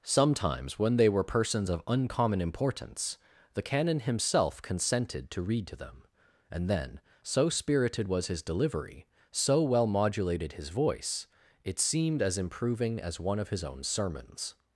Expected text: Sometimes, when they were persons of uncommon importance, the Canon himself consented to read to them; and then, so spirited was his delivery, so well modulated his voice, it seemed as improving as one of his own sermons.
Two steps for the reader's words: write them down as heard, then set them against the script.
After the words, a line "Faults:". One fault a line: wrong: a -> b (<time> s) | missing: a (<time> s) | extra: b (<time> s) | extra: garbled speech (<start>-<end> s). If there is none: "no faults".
Sometimes, when they were persons of uncommon importance, the Canon himself consented to read to them; and then, so spirited was his delivery, so well modulated his voice, it seemed as improving as one of his own sermons.
Faults:
no faults